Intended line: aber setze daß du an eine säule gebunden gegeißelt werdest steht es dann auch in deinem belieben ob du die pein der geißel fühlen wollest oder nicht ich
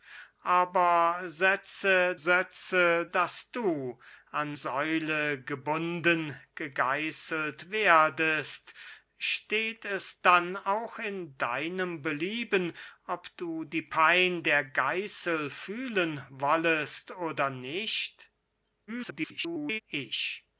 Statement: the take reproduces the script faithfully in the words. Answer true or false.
false